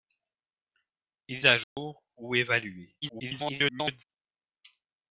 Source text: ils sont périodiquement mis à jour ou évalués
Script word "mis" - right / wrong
wrong